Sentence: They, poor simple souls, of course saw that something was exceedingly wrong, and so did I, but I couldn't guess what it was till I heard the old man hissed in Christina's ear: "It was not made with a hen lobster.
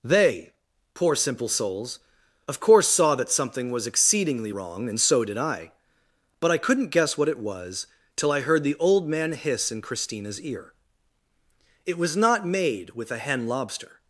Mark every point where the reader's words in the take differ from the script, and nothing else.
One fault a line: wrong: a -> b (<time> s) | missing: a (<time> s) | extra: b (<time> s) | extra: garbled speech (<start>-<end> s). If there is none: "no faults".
wrong: hissed -> hiss (9.3 s)